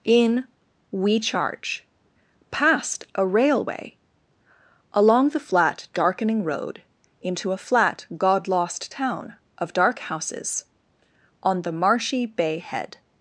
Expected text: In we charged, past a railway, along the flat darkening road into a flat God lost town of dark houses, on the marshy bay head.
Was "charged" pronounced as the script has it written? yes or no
no